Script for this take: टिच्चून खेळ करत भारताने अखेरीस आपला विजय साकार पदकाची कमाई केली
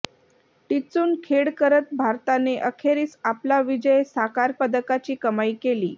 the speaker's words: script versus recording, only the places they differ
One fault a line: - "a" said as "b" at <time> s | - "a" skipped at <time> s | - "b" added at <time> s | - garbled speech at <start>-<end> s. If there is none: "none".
none